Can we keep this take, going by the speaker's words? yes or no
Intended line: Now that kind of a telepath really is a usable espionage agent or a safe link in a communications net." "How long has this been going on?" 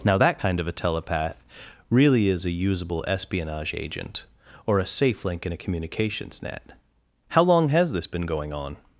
yes